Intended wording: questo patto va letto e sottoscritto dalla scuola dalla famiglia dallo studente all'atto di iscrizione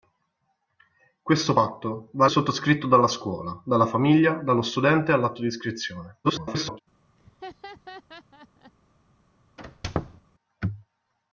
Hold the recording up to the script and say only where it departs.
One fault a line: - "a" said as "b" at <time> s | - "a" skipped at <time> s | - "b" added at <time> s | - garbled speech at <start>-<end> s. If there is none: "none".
- "letto" skipped at 2.3 s
- garbled speech at 6.2-6.8 s